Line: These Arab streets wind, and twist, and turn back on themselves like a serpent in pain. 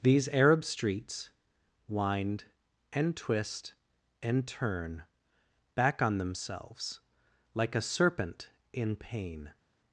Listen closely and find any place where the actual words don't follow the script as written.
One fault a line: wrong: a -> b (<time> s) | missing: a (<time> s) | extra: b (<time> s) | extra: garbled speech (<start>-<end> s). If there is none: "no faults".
no faults